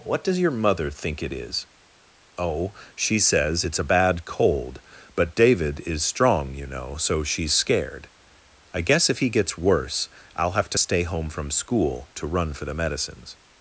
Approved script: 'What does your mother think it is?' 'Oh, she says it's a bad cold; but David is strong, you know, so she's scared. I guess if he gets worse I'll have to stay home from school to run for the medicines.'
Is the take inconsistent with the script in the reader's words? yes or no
no